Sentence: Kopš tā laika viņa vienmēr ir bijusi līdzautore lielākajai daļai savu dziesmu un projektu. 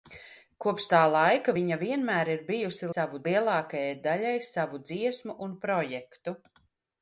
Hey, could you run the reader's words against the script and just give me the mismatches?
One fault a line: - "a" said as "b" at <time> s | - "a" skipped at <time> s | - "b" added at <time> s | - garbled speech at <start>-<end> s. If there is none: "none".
- "līdzautore" said as "savu" at 3.0 s